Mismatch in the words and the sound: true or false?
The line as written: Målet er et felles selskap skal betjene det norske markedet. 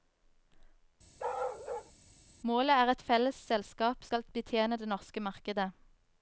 true